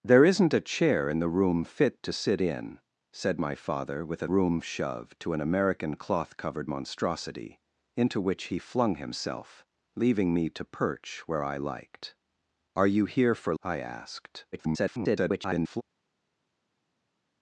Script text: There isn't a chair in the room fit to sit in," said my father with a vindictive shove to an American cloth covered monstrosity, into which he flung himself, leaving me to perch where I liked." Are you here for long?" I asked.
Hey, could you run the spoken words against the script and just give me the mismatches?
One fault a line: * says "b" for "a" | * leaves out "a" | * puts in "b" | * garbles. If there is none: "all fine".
* says "room" for "vindictive"
* leaves out "long"
* garbles